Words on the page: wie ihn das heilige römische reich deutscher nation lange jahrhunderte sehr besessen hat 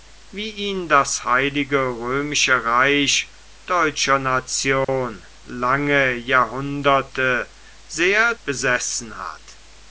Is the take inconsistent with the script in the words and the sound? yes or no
yes